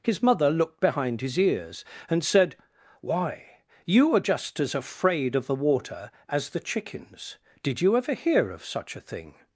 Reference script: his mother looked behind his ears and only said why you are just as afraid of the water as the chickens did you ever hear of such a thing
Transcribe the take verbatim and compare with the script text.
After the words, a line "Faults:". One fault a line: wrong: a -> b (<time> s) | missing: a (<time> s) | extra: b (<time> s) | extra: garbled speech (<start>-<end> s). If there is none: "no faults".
his mother looked behind his ears and said why you are just as afraid of the water as the chickens did you ever hear of such a thing
Faults:
missing: only (2.2 s)